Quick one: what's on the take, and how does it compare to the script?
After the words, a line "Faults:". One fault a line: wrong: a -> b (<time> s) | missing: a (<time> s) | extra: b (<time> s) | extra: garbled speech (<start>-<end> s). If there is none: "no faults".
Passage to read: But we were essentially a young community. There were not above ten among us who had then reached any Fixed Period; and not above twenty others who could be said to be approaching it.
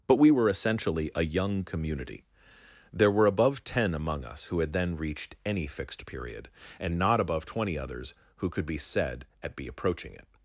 But we were essentially a young community. There were above ten among us who had then reached any Fixed Period; and not above twenty others who could be said at be approaching it.
Faults:
missing: not (3.2 s)
wrong: to -> at (9.4 s)